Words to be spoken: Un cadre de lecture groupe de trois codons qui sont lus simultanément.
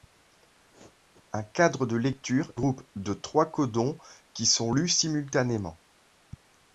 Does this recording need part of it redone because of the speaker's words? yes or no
no